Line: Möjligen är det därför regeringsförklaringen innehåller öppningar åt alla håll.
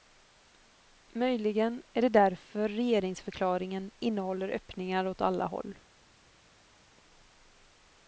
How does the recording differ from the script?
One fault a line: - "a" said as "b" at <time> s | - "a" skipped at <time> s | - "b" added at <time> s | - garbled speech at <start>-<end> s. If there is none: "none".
none